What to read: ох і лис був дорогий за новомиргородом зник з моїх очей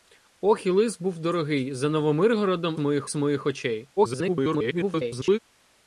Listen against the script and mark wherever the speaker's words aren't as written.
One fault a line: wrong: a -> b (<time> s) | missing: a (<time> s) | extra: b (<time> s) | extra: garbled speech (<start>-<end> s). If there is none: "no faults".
wrong: зник -> моїх (2.8 s)
extra: garbled speech (4.0-5.4 s)